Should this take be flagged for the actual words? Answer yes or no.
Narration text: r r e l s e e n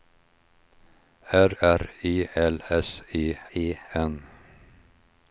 no